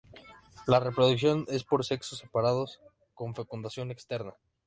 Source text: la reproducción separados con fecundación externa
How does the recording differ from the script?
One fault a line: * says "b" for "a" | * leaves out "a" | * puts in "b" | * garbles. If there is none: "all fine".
* puts in "es por sexos"